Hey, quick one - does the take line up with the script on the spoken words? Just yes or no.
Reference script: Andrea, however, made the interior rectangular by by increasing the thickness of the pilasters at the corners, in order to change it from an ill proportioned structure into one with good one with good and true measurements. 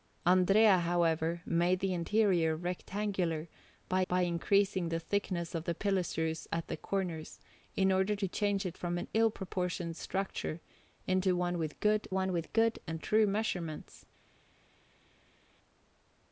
yes